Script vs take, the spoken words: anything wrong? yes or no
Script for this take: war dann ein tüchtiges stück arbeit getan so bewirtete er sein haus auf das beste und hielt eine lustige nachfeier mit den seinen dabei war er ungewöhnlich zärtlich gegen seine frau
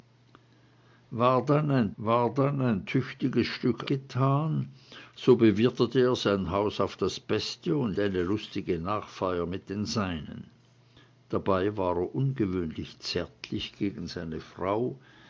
yes